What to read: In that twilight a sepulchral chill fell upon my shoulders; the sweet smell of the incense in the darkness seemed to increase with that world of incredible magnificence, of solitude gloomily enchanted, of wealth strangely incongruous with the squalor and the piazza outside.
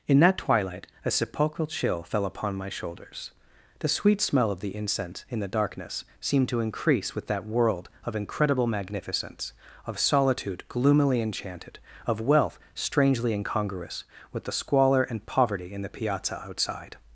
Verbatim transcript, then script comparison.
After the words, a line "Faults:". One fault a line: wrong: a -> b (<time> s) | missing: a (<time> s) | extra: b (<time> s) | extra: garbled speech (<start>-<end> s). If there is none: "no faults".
In that twilight a sepulchral chill fell upon my shoulders; the sweet smell of the incense in the darkness seemed to increase with that world of incredible magnificence, of solitude gloomily enchanted, of wealth strangely incongruous with the squalor and poverty in the piazza outside.
Faults:
extra: poverty in (15.3 s)